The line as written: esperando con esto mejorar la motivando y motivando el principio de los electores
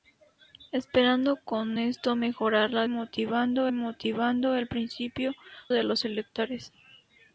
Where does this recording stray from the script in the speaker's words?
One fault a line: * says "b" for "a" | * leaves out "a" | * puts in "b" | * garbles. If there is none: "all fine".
all fine